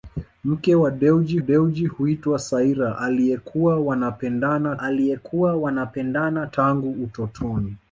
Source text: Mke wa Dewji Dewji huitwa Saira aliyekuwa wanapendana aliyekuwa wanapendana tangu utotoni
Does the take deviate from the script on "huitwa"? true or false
false